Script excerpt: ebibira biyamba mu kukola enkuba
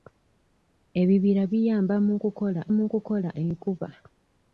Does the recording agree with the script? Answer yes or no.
no